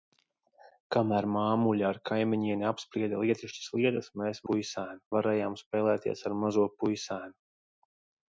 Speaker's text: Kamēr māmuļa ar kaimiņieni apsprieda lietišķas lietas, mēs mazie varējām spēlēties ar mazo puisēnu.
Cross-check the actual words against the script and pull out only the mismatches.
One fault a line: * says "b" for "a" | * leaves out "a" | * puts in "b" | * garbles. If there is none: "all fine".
* says "puisēnu" for "mazie"